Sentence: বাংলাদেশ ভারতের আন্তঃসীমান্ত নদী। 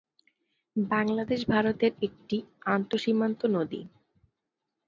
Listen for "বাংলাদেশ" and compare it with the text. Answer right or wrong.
right